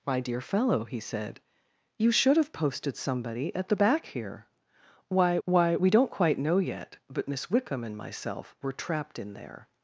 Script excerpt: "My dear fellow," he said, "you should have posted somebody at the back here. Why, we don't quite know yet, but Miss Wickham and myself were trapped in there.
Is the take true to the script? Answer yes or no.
no